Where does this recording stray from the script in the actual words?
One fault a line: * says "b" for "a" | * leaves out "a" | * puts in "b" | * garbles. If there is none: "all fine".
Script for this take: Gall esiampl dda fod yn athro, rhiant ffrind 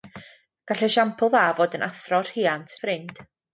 all fine